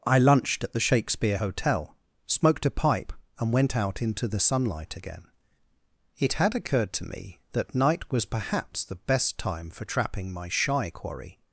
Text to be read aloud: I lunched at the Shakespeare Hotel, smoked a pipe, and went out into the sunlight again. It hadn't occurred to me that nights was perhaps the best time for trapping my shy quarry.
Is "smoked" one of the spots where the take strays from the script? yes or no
no